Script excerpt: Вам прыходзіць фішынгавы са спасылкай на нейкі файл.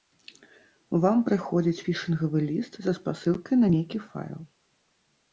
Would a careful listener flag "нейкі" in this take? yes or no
no